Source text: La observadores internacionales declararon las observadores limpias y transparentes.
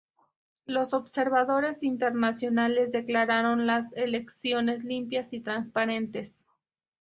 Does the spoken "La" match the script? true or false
false